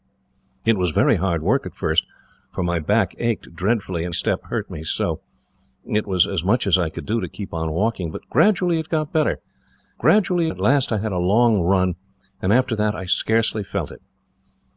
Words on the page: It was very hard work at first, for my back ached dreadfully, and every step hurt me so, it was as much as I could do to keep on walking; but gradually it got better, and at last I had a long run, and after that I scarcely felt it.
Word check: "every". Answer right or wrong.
wrong